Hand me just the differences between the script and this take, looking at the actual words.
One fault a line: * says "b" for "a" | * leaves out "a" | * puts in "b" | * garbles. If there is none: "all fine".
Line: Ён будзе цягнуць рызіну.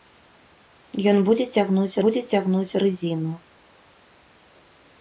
* puts in "будзе цягнуць"